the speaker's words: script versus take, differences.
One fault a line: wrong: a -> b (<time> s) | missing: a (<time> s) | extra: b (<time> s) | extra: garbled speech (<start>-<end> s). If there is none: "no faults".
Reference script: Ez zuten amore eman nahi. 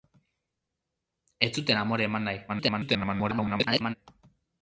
extra: garbled speech (2.5-4.0 s)